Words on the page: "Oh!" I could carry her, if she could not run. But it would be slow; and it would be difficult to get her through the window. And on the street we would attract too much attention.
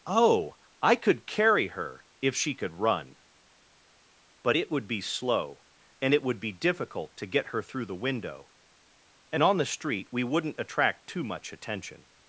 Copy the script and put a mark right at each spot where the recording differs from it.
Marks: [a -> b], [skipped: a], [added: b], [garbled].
"Oh!" I could carry her, if she could [skipped: not] run. But it would be slow; and it would be difficult to get her through the window. And on the street we [would -> wouldn't] attract too much attention.